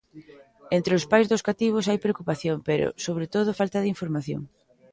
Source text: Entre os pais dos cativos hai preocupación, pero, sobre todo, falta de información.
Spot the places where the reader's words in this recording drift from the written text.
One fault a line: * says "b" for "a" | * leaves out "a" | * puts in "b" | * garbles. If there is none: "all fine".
all fine